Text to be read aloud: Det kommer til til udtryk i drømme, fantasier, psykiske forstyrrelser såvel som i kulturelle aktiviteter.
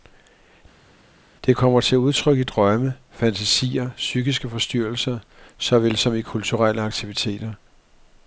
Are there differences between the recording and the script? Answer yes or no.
yes